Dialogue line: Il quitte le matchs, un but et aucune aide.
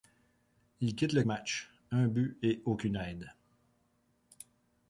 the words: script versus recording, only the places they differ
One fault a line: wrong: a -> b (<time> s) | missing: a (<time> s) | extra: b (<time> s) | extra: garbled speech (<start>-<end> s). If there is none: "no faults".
no faults